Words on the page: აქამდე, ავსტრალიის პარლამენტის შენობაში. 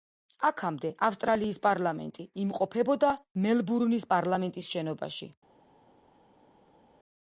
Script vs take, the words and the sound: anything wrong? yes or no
yes